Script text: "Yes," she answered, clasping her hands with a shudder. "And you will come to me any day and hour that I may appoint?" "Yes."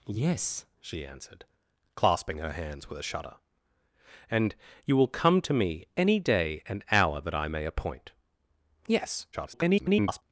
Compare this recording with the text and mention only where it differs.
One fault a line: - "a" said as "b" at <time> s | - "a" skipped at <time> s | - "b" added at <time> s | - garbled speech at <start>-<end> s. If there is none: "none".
- garbled speech at 9.3-10.2 s